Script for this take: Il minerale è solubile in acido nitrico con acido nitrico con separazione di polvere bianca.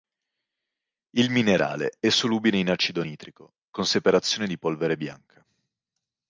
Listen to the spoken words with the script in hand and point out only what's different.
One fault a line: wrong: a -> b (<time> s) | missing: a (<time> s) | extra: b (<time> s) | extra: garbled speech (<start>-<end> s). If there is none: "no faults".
missing: acido nitrico con (3.8 s)